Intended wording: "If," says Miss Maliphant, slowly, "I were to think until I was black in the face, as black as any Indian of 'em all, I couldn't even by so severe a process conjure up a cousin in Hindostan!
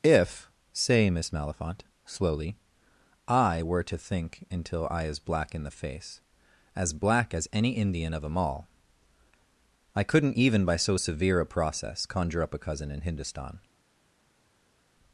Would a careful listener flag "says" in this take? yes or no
yes